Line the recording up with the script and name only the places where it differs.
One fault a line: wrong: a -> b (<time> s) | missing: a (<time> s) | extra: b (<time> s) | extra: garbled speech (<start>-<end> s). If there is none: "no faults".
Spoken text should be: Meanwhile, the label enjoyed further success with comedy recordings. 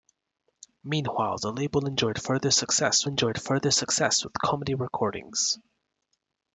extra: enjoyed further success (3.1 s)